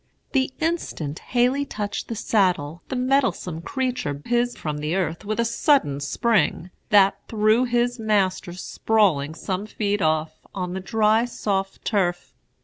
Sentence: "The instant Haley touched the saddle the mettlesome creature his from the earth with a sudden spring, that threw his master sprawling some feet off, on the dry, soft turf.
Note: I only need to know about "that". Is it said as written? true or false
true